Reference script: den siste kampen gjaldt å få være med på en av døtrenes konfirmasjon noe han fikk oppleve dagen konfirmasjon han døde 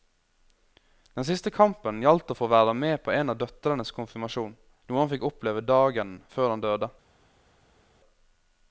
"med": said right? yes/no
yes